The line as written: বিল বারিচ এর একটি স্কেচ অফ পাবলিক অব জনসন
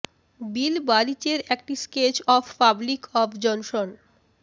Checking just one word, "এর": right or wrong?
right